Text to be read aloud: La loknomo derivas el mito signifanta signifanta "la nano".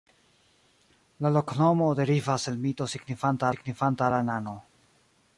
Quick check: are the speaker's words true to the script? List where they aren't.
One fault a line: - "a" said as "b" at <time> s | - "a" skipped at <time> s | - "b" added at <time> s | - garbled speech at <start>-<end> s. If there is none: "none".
none